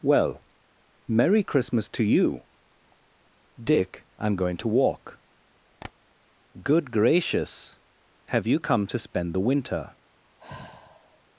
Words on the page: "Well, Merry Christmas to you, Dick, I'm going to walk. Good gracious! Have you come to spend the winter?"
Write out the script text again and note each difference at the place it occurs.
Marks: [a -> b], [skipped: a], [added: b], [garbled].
"Well, Merry Christmas to you, Dick, I'm going to walk. Good gracious! Have you come to spend the winter?"